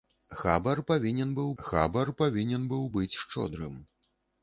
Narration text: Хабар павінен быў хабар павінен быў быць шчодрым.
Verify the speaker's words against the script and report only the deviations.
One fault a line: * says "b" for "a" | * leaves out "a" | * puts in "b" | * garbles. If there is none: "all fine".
all fine